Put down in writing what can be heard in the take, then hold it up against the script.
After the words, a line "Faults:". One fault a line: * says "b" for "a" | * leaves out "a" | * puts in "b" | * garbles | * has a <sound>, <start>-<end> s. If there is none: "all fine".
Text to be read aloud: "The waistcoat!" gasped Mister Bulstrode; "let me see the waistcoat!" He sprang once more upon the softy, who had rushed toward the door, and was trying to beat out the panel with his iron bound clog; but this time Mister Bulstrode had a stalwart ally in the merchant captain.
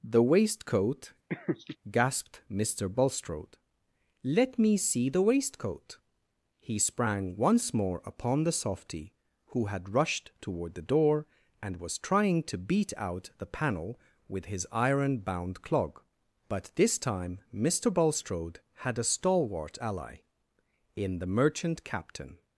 "The waistcoat!" gasped Mister Bulstrode; "let me see the waistcoat!" He sprang once more upon the softy, who had rushed toward the door, and was trying to beat out the panel with his iron bound clog; but this time Mister Bulstrode had a stalwart ally in the merchant captain.
Faults:
* has a laugh, 1.3-1.8 s